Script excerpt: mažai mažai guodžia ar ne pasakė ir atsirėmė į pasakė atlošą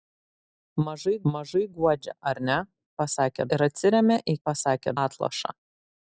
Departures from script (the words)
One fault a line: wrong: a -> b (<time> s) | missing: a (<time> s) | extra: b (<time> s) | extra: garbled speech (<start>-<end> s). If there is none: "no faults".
no faults